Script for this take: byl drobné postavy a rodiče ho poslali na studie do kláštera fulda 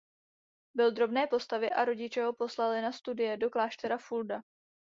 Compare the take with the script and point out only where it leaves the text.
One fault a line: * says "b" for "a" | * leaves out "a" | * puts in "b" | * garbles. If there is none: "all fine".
all fine